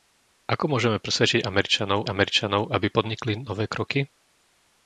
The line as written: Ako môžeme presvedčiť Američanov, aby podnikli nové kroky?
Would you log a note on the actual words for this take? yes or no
yes